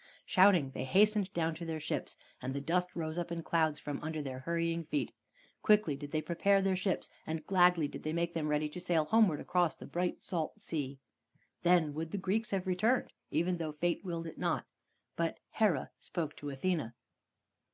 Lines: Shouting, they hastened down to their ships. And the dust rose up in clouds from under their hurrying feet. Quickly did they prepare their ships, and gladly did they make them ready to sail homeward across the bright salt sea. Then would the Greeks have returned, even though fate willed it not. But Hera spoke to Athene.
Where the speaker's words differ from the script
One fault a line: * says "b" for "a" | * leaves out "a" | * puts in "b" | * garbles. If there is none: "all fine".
all fine